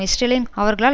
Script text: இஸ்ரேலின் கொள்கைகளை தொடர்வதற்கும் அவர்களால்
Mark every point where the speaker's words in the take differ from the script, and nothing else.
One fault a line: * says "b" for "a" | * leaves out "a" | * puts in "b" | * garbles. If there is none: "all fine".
* leaves out "கொள்கைகளை தொடர்வதற்கும்"